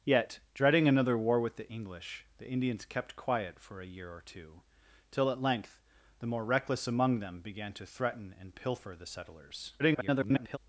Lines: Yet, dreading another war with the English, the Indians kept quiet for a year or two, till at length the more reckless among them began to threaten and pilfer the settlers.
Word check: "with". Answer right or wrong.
right